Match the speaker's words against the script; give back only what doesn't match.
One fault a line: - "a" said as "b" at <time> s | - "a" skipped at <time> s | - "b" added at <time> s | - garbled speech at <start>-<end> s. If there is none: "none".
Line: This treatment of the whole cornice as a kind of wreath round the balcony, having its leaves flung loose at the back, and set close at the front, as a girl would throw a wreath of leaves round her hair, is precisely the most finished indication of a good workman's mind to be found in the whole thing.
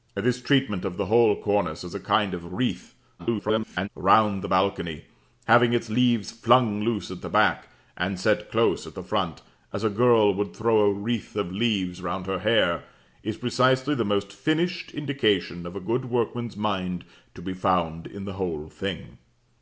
- garbled speech at 3.2-3.9 s